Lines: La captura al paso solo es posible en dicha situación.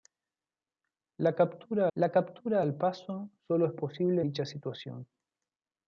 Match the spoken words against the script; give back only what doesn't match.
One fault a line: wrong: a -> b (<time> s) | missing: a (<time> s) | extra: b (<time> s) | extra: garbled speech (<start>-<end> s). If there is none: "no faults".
extra: la captura (1.9 s)
missing: en (4.2 s)